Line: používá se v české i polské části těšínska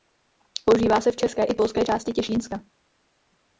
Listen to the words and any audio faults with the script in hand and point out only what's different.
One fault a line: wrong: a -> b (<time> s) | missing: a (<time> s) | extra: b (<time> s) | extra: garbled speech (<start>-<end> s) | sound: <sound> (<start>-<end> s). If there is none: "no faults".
no faults